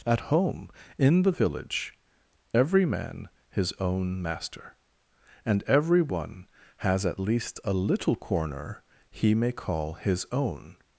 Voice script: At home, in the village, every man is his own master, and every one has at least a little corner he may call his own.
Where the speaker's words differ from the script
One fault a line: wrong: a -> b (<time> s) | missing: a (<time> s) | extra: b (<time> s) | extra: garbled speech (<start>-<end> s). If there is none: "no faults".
missing: is (3.3 s)